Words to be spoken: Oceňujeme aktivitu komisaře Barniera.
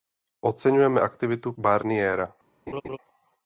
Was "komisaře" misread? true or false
true